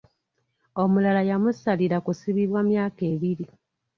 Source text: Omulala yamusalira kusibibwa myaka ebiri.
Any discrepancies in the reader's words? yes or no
no